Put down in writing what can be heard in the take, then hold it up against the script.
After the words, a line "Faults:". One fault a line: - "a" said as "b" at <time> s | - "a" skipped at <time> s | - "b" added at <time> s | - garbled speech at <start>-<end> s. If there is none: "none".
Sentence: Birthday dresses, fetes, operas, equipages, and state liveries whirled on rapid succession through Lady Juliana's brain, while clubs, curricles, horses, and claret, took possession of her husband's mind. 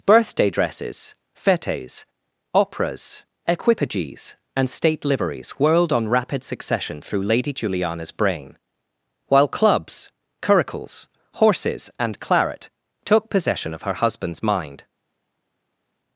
Birthday dresses, fetes, operas, equipages, and state liveries whirled on rapid succession through Lady Juliana's brain, while clubs, curricles, horses, and claret, took possession of her husband's mind.
Faults:
none